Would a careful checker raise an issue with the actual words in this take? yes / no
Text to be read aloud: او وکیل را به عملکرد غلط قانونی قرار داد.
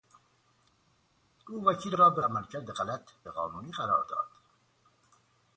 no